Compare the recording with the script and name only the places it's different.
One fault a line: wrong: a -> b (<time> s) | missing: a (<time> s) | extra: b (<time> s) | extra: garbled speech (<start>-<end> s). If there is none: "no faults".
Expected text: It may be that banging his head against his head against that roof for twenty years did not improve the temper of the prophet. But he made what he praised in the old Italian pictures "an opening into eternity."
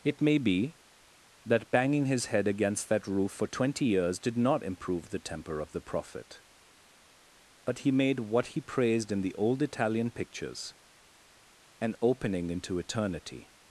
missing: his head against (2.9 s)